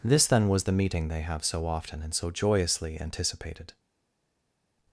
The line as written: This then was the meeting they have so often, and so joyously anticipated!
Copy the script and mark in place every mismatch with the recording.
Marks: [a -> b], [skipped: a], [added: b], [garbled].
This then was the meeting they have so often, and so joyously anticipated!